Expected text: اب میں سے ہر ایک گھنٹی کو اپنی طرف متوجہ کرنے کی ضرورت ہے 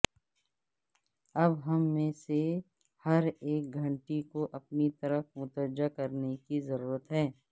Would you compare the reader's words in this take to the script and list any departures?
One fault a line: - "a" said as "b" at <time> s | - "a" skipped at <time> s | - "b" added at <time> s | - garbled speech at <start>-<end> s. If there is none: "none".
- "ہم" added at 1.6 s